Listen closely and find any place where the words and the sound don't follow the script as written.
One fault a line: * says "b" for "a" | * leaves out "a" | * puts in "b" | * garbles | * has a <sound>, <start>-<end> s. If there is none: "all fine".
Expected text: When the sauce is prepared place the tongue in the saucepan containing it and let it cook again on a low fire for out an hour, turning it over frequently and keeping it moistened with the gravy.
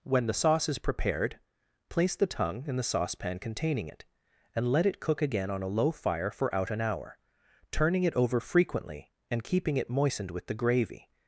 all fine